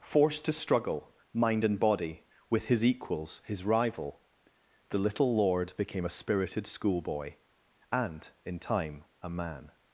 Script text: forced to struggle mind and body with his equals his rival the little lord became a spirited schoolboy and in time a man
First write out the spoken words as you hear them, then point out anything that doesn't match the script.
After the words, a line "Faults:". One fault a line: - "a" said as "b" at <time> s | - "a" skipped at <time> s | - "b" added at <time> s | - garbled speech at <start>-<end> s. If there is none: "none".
forced to struggle mind and body with his equals his rival the little lord became a spirited schoolboy and in time a man
Faults:
none